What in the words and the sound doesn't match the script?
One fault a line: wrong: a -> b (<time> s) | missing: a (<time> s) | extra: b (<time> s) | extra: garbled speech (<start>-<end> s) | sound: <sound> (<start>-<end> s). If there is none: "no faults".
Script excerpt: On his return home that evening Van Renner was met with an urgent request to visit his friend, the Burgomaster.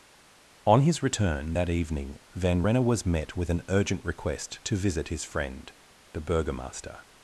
missing: home (1.6 s)